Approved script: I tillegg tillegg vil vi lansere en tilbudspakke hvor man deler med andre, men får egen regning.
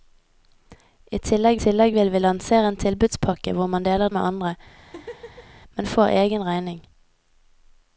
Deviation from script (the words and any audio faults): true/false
true